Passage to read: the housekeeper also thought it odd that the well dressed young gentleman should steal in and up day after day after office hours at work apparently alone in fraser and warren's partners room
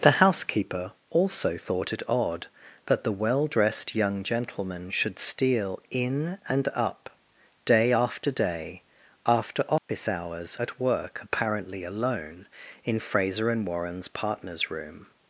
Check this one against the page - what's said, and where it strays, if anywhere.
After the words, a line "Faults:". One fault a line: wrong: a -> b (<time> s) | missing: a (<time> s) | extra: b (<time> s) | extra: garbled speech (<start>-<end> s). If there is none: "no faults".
the housekeeper also thought it odd that the well dressed young gentleman should steal in and up day after day after office hours at work apparently alone in fraser and warren's partners room
Faults:
no faults